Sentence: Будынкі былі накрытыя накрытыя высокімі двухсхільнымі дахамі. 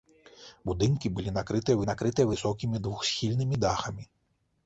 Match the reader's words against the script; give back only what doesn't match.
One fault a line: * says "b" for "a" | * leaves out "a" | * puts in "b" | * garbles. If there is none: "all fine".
all fine